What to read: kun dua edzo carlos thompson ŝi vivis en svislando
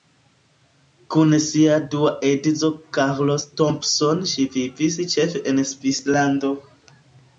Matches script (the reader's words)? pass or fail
fail